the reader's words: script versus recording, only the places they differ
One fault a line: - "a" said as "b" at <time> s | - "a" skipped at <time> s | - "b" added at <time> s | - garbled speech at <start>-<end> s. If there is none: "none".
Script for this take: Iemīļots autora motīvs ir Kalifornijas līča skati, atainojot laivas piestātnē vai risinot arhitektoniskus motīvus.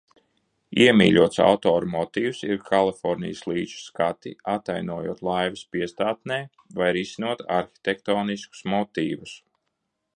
none